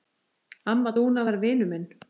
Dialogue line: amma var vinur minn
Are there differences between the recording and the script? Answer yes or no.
yes